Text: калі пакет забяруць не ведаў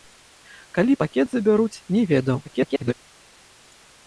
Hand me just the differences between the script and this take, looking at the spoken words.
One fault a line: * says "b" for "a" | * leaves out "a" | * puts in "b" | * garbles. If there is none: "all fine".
* garbles